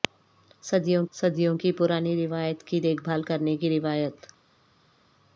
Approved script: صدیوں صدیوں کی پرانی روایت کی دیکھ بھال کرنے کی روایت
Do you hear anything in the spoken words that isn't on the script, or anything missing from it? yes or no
no